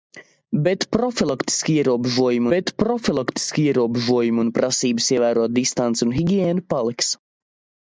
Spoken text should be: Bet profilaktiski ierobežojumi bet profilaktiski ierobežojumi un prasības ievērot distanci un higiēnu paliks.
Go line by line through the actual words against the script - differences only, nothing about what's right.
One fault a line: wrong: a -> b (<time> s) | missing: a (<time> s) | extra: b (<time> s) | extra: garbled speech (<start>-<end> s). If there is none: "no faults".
no faults